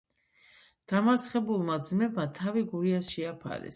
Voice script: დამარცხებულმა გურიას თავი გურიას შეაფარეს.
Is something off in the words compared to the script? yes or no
yes